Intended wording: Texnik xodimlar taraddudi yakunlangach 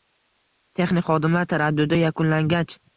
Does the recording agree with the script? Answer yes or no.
yes